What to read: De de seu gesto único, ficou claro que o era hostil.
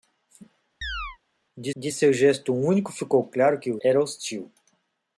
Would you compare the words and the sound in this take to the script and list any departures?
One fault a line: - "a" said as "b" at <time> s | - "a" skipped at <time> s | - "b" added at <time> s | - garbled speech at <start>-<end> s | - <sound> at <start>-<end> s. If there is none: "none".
- chirp at 0.8-1.2 s